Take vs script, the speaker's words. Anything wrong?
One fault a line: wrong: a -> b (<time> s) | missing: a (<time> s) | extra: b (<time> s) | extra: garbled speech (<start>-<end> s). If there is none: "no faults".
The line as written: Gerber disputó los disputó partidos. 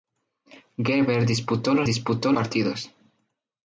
no faults